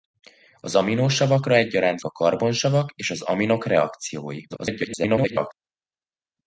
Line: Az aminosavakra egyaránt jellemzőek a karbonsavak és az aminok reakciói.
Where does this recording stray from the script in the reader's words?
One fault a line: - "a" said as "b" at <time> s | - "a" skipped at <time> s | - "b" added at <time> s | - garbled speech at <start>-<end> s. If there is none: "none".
- "jellemzőek" skipped at 2.0 s
- garbled speech at 4.5-5.5 s